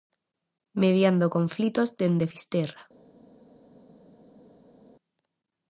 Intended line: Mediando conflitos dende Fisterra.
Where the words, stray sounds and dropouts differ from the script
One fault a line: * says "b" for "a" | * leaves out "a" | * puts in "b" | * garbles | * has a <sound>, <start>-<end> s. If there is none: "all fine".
all fine